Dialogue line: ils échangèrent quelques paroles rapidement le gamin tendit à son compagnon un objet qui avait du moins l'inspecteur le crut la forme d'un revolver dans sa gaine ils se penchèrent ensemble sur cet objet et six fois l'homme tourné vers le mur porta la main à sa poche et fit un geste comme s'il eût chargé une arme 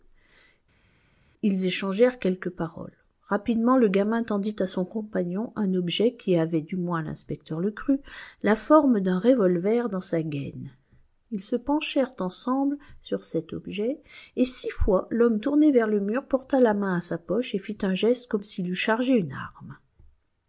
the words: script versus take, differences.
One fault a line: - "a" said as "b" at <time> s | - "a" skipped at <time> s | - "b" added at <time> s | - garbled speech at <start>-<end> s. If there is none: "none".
none